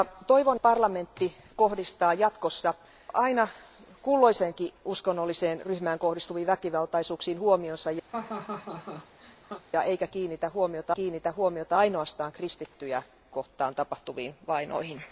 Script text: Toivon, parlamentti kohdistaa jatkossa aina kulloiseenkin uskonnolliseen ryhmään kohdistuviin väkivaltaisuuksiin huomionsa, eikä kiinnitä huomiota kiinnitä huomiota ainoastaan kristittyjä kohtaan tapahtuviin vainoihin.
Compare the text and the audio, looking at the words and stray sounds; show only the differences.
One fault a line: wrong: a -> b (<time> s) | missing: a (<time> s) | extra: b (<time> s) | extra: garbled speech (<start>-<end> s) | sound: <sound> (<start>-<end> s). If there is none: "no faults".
sound: laugh (8.1-9.6 s)